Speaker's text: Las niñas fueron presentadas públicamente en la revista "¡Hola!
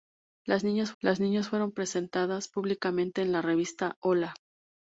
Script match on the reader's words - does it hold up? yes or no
no